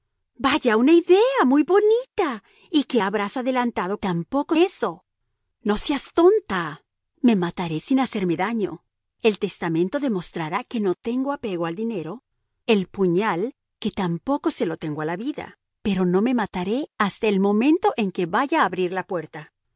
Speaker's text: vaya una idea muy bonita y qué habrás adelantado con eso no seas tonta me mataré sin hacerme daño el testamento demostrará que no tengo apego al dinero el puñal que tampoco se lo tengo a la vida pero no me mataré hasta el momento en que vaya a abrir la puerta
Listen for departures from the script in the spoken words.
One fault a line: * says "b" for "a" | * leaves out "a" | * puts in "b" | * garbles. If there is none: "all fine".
* says "tampoco" for "con"